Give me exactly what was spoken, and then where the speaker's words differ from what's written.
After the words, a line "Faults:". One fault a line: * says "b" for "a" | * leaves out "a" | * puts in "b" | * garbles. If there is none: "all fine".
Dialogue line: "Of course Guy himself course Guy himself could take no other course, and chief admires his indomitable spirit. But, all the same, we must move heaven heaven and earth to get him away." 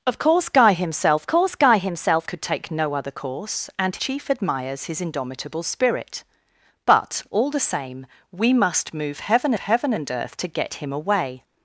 "Of course Guy himself course Guy himself could take no other course, and chief admires his indomitable spirit. But, all the same, we must move heaven heaven and earth to get him away."
Faults:
all fine